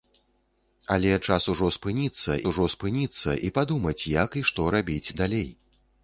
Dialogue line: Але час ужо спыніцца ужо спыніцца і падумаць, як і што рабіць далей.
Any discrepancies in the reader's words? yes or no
no